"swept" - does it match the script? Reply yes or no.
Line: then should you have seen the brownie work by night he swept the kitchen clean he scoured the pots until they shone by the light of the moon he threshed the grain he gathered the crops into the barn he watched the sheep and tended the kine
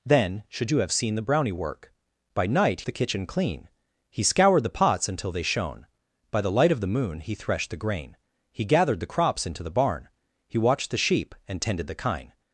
no